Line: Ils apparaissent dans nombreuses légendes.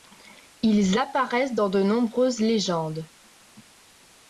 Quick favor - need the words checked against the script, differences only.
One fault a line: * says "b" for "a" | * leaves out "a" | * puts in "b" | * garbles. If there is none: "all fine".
* puts in "de"